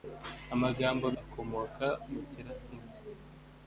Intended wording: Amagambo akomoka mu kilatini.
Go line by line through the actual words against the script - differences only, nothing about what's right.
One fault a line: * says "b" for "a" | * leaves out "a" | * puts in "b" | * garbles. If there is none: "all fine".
all fine